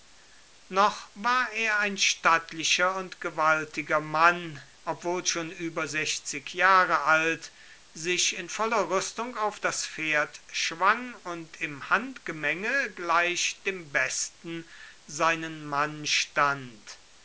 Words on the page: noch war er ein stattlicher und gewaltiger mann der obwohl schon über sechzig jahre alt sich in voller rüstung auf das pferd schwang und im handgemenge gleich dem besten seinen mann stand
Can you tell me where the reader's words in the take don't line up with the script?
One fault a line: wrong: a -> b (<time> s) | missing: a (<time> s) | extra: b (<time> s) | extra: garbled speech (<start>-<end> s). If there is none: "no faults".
missing: der (4.6 s)